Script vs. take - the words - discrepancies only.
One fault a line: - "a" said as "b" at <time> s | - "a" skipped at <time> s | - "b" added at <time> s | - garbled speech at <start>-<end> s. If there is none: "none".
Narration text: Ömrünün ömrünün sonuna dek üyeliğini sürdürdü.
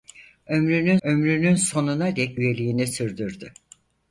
none